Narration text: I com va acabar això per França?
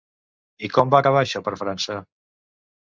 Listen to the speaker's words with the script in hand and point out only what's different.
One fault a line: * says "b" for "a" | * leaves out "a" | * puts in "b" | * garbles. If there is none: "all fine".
all fine